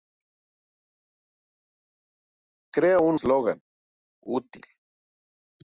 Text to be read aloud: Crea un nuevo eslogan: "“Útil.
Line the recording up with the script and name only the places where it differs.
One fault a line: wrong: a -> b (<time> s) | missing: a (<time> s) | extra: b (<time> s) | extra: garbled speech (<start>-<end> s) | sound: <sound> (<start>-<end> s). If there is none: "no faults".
missing: nuevo (3.2 s)